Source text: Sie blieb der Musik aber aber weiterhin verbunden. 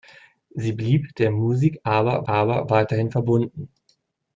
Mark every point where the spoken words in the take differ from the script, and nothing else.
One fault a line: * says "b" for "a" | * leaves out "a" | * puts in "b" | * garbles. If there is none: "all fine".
all fine